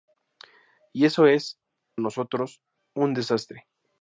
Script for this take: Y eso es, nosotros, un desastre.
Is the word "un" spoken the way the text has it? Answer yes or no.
yes